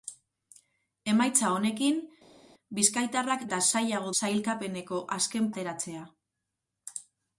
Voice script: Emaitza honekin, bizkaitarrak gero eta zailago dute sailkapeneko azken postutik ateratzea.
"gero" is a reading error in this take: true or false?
true